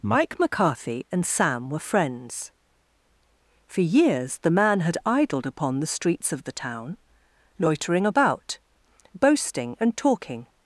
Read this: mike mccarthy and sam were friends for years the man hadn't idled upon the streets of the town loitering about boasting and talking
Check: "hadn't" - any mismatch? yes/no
yes